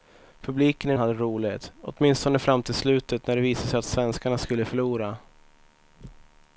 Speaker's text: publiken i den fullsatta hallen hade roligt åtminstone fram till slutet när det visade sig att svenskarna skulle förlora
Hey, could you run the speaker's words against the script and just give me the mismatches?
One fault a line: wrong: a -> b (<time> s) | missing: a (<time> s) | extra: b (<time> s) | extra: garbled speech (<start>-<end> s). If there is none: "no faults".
missing: den fullsatta hallen (0.9 s)